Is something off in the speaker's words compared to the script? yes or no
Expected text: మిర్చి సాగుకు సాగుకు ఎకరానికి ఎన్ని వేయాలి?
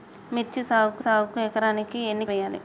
no